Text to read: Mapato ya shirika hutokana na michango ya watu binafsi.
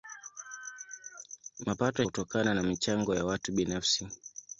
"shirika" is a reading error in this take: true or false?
true